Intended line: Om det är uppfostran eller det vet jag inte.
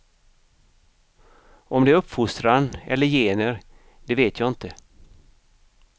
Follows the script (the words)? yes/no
no